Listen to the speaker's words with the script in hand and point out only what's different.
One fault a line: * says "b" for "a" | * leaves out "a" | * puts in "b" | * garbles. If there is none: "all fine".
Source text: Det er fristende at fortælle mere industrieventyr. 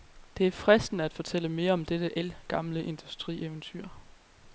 * puts in "om dette ældgamle"